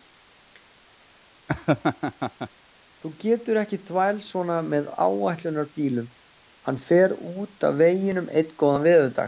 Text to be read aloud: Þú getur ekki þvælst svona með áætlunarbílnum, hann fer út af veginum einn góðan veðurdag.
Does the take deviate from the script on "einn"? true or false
false